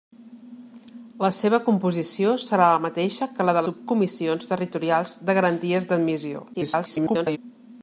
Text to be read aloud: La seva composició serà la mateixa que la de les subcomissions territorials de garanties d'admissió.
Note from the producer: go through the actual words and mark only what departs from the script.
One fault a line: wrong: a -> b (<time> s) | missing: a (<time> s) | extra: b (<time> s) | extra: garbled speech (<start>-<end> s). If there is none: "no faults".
missing: les (3.6 s)
extra: garbled speech (6.5-7.4 s)